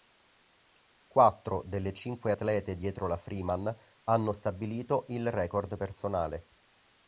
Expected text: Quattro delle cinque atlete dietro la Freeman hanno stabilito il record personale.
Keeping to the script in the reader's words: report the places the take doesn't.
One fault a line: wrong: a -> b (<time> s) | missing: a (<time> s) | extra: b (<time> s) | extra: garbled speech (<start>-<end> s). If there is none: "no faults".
no faults